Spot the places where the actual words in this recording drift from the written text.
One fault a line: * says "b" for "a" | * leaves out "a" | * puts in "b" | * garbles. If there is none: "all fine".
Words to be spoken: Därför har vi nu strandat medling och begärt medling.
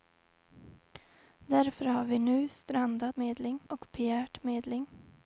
all fine